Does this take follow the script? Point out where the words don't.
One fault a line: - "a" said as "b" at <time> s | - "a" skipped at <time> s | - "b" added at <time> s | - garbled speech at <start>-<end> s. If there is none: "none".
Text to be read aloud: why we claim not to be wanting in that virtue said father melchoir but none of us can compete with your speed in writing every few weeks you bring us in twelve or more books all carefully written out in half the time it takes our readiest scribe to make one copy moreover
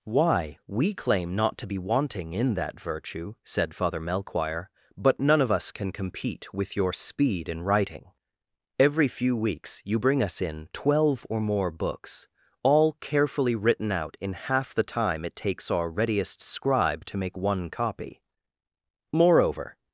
none